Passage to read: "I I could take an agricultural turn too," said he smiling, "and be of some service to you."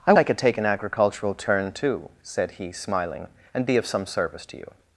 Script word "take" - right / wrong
right